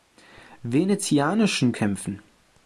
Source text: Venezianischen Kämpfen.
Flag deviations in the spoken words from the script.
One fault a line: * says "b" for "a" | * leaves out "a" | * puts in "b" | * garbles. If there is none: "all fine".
all fine